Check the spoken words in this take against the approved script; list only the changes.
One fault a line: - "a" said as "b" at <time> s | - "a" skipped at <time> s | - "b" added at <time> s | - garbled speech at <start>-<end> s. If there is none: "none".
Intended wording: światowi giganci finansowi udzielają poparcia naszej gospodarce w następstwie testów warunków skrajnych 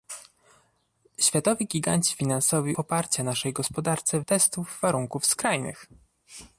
- "udzielają" skipped at 2.8 s
- "następstwie" skipped at 4.2 s